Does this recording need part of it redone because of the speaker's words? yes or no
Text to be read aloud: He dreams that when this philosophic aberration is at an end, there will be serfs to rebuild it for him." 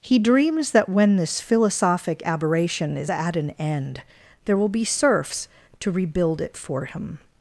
no